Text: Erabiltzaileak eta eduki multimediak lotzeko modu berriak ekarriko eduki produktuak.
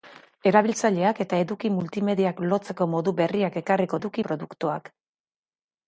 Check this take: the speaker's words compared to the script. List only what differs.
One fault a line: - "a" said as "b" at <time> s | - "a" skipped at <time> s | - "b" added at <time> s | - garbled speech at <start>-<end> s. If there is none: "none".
none